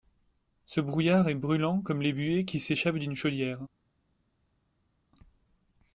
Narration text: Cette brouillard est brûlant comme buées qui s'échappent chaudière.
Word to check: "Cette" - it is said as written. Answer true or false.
false